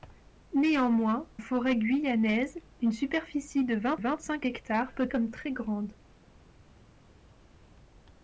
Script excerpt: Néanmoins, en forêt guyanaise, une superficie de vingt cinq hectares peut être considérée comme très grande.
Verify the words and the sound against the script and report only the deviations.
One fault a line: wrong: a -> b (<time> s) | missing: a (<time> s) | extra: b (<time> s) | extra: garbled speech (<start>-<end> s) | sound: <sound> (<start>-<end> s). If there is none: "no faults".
missing: en (1.3 s)
extra: vingt (3.9 s)
missing: être considérée (5.1 s)